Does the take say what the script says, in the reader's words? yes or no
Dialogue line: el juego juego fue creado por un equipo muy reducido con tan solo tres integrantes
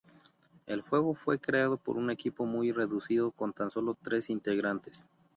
no